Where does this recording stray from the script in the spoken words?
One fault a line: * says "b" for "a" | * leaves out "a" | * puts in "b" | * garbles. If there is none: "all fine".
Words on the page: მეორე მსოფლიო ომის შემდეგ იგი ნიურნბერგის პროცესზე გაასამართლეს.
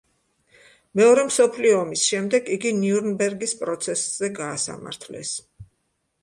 all fine